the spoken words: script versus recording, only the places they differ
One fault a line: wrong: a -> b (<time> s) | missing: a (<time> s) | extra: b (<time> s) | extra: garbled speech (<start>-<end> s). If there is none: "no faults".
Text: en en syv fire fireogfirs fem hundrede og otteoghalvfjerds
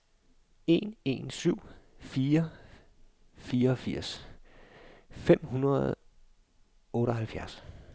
no faults